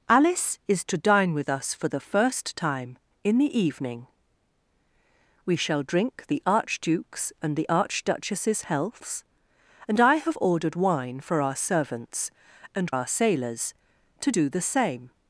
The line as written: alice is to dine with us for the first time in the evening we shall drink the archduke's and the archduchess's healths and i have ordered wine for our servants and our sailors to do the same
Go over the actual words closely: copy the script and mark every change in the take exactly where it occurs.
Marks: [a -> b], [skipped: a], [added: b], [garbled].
alice is to dine with us for the first time in the evening we shall drink the archduke's and the archduchess's healths and i have ordered wine for our servants and our sailors to do the same